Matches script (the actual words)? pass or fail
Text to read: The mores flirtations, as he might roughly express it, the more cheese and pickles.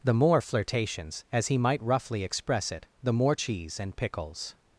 fail